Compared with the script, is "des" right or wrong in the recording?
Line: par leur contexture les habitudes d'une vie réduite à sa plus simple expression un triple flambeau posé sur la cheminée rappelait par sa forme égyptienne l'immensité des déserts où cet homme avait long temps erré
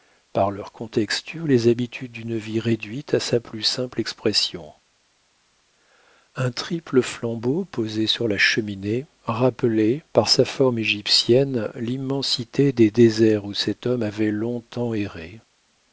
right